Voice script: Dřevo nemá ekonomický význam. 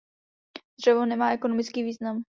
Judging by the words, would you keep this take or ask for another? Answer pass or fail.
pass